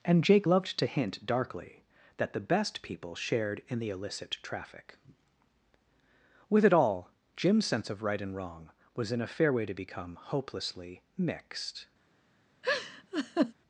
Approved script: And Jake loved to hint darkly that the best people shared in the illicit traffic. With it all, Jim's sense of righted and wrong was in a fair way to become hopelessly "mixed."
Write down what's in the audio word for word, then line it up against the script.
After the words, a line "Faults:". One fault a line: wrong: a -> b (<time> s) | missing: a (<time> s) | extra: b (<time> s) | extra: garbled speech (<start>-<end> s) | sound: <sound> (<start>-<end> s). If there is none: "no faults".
And Jake loved to hint darkly that the best people shared in the illicit traffic. With it all, Jim's sense of right and wrong was in a fair way to become hopelessly "mixed."
Faults:
wrong: righted -> right (8.0 s)
sound: laugh (12.6-13.5 s)